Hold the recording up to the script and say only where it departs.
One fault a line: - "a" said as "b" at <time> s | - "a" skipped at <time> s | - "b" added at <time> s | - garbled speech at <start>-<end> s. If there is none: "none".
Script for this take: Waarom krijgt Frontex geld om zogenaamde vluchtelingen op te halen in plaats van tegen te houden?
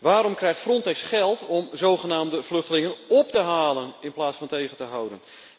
none